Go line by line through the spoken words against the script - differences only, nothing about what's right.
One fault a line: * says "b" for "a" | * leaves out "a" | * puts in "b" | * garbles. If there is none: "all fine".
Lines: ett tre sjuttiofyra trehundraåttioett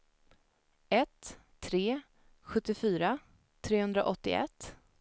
all fine